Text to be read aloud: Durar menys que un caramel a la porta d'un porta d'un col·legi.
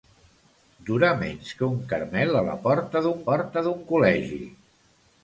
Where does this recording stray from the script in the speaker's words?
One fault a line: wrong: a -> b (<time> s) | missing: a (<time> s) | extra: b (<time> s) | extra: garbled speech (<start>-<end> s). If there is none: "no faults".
no faults